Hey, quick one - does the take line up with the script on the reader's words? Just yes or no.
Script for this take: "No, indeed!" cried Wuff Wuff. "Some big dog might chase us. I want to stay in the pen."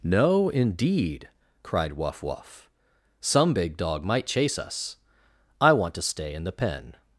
yes